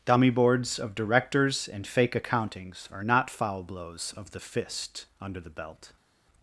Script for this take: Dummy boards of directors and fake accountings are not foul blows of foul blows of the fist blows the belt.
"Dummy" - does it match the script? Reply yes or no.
yes